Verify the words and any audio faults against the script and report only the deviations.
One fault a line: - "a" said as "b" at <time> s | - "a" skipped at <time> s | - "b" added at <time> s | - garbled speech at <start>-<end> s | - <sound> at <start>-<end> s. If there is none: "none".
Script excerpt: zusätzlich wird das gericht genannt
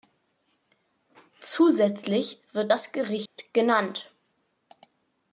- dropout at 3.3-3.4 s